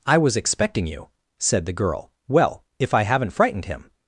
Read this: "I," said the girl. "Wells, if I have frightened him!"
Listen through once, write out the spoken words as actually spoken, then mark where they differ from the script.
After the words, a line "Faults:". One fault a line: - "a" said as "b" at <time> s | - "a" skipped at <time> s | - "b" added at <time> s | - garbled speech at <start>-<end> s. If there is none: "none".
"I was expecting you," said the girl. "Well, if I haven't frightened him!"
Faults:
- "was expecting you" added at 0.2 s
- "Wells" said as "Well" at 2.3 s
- "have" said as "haven't" at 3.0 s